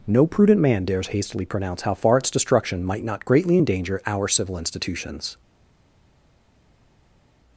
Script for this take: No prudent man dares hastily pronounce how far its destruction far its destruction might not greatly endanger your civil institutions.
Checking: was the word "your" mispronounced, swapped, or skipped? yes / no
yes